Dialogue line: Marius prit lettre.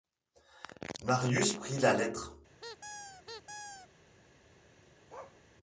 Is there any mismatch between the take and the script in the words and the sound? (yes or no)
yes